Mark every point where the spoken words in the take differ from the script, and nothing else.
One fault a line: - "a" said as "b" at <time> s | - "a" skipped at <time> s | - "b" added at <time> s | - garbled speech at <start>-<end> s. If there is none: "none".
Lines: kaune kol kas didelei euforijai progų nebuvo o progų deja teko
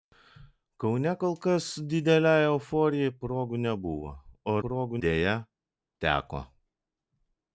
none